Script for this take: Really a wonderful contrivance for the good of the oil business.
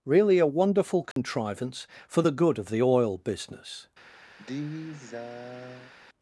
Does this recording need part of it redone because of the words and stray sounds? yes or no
yes